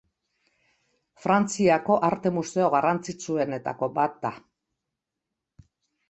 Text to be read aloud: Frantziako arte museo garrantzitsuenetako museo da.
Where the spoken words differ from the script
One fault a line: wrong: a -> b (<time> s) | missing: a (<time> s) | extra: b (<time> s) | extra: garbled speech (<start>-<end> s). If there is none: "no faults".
wrong: museo -> bat (4.0 s)